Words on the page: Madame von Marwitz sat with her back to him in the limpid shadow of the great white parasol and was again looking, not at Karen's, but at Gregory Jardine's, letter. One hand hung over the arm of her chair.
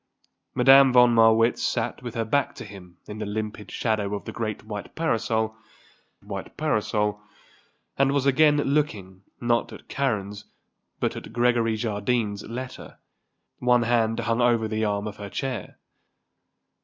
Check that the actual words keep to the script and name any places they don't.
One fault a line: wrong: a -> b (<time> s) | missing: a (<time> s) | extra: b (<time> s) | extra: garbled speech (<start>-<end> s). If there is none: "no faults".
extra: white parasol (6.2 s)